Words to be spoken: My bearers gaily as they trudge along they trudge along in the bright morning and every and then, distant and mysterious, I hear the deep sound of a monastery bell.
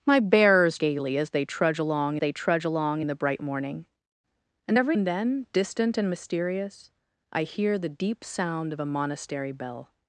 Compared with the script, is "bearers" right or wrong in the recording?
right